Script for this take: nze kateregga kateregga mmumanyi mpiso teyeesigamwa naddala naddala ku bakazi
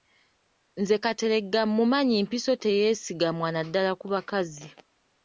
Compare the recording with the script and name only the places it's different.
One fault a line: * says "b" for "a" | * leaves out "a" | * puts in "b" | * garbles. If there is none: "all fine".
* leaves out "kateregga"
* leaves out "naddala"